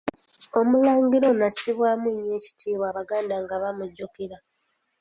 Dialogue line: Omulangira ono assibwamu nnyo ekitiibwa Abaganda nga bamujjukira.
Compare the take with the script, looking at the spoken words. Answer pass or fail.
pass